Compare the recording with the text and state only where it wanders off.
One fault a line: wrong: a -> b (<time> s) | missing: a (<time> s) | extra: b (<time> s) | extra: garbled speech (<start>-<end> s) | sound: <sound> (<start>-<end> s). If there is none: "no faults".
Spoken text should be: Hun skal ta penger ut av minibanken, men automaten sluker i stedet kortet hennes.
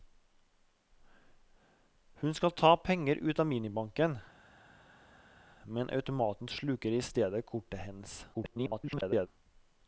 extra: garbled speech (8.3-9.3 s)